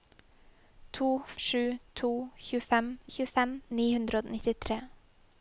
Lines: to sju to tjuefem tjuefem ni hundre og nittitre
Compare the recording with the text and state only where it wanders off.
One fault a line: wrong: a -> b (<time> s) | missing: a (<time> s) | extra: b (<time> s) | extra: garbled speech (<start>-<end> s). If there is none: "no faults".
no faults